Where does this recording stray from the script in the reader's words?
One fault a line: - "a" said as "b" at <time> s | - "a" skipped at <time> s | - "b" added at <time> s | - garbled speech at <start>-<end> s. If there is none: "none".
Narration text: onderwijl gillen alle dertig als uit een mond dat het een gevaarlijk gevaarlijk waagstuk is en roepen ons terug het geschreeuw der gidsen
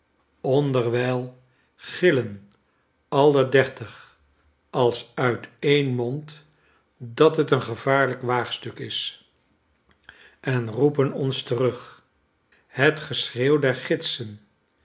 - "gevaarlijk" skipped at 8.2 s